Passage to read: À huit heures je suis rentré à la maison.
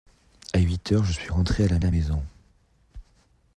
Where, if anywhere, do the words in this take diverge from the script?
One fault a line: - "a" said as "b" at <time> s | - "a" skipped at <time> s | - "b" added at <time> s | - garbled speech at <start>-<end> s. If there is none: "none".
- "la" added at 1.8 s